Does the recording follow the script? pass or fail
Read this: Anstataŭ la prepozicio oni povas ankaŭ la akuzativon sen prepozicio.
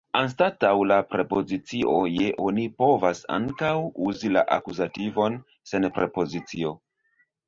fail